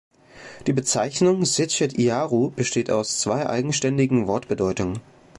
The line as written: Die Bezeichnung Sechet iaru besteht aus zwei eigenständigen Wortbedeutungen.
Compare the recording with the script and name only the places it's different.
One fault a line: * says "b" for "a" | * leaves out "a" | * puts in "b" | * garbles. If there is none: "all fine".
all fine